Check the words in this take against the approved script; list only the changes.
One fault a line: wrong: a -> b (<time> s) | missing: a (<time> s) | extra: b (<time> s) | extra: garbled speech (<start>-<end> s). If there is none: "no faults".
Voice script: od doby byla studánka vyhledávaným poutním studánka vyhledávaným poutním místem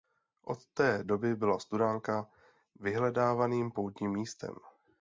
extra: té (0.7 s)
missing: studánka vyhledávaným poutním (4.1 s)